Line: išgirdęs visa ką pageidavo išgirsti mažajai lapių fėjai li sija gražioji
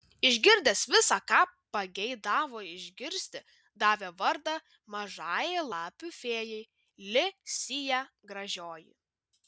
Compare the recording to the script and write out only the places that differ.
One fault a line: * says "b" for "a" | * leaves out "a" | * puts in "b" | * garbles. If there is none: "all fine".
* puts in "davė vardą"